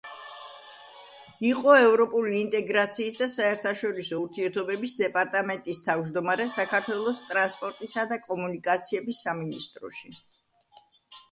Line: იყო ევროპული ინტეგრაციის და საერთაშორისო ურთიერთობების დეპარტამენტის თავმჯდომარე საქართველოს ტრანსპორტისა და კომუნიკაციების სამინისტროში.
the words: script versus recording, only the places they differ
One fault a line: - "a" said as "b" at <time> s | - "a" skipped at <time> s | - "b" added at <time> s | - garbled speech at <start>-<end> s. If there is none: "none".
none